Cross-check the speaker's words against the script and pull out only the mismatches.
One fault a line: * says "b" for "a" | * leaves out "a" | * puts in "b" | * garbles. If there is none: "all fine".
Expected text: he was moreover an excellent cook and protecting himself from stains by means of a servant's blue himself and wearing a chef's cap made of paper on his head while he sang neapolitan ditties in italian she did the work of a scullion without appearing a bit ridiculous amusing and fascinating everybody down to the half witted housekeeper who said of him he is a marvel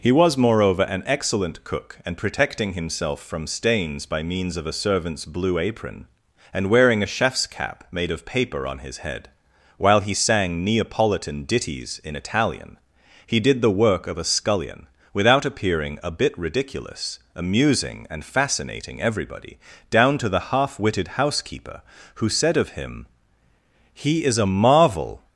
* says "apron" for "himself"
* says "he" for "she"